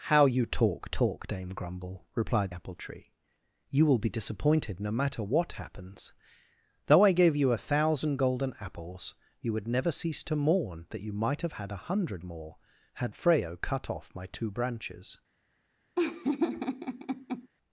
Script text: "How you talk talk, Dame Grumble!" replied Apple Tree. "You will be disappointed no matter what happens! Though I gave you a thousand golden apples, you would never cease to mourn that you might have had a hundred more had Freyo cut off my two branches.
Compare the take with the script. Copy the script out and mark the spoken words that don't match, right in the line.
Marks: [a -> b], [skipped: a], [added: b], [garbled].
"How you talk talk, Dame Grumble!" replied Apple Tree. "You will be disappointed no matter what happens! Though I gave you a thousand golden apples, you would never cease to mourn that you might have had a hundred more had Freyo cut off my two branches.